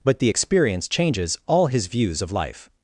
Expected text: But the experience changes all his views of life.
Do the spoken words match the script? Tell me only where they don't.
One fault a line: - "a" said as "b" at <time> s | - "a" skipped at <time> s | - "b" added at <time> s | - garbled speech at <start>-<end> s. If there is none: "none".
none